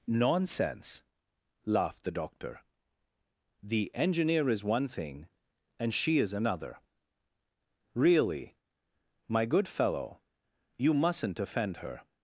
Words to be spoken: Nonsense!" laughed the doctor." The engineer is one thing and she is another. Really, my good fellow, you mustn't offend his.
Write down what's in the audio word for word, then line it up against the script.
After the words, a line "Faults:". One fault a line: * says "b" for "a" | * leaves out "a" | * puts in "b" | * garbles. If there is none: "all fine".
Nonsense!" laughed the doctor." The engineer is one thing and she is another. Really, my good fellow, you mustn't offend her.
Faults:
* says "her" for "his"